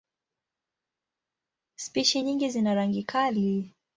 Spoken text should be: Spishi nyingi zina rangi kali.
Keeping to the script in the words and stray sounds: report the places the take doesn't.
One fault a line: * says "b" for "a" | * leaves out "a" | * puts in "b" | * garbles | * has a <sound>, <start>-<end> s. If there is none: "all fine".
all fine